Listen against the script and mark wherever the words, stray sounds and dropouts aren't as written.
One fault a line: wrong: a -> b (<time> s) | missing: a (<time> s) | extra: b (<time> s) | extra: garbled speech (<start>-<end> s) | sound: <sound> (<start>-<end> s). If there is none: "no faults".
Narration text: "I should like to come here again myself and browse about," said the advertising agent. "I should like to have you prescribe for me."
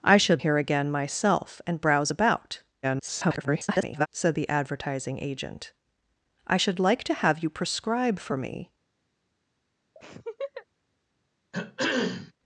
missing: like to come (0.4 s)
extra: garbled speech (2.8-4.1 s)
sound: laugh (10.0-10.7 s)
sound: throat clearing (11.5-12.3 s)